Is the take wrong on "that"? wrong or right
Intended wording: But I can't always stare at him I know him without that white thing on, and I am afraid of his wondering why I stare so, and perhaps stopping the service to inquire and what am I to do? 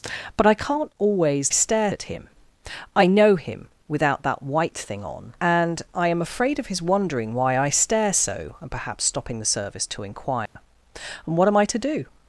right